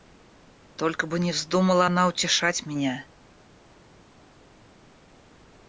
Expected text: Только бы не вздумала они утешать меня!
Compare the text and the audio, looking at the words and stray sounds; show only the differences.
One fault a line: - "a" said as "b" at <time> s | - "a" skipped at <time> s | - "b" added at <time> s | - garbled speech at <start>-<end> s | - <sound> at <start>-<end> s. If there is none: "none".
- "они" said as "она" at 1.8 s